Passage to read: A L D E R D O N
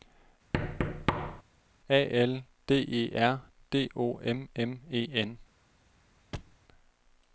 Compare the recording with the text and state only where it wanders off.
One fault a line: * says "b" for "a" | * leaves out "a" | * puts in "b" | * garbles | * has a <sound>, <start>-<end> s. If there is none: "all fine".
* has a thud, 0.5-1.4 s
* puts in "M M E"
* has a thud, 6.3-6.6 s